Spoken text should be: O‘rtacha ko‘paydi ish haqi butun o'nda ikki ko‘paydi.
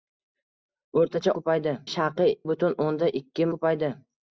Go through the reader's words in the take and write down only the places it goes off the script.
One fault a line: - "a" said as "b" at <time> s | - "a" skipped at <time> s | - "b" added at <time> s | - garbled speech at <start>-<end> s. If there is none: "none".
none